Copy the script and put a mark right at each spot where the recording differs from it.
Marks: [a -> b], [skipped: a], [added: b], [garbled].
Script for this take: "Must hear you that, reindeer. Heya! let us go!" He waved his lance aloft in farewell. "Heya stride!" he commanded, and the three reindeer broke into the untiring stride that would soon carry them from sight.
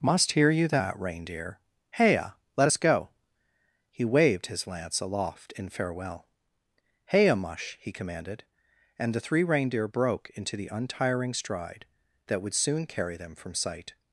"Must hear you that, reindeer. Heya! let us go!" He waved his lance aloft in farewell. "Heya [stride!" -> mush] he commanded, and the three reindeer broke into the untiring stride that would soon carry them from sight.